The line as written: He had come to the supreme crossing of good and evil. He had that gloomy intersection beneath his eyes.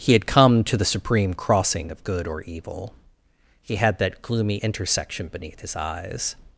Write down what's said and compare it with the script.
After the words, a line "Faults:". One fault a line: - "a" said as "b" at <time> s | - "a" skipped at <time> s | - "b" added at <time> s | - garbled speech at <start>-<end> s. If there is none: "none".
He had come to the supreme crossing of good or evil. He had that gloomy intersection beneath his eyes.
Faults:
- "and" said as "or" at 2.2 s